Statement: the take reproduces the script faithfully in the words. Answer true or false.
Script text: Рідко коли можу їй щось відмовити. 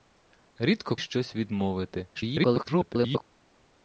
false